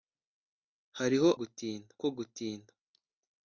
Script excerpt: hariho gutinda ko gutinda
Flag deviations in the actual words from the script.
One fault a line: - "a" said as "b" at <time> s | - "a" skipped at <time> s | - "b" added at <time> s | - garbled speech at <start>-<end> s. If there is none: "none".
none